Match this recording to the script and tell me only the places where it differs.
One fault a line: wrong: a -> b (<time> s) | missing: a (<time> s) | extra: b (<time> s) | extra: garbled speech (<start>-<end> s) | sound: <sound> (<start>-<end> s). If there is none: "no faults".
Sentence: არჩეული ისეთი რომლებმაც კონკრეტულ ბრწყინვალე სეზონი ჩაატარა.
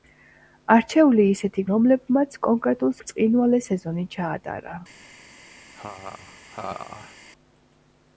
sound: laugh (5.7-7.2 s)